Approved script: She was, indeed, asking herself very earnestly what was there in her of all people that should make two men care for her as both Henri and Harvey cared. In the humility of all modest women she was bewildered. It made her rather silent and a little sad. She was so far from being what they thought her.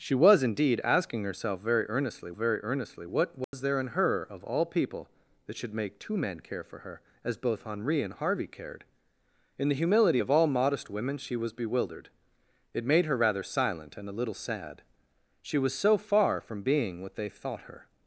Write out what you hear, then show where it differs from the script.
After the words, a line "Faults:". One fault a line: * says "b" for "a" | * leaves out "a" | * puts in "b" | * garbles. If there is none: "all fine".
She was, indeed, asking herself very earnestly very earnestly what was there in her of all people that should make two men care for her as both Henri and Harvey cared. In the humility of all modest women she was bewildered. It made her rather silent and a little sad. She was so far from being what they thought her.
Faults:
* puts in "very earnestly"